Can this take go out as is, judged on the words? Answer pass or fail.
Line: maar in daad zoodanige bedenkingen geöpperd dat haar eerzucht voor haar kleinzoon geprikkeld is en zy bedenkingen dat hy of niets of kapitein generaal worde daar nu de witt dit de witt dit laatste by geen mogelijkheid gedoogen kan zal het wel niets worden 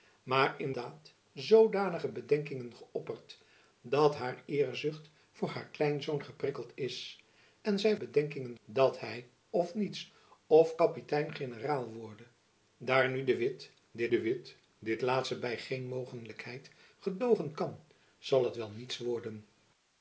pass